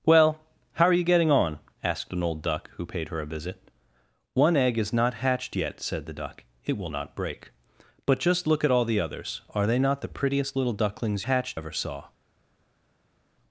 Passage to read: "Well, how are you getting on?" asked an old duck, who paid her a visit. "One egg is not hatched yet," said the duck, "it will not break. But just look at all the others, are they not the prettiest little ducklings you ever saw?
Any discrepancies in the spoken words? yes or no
yes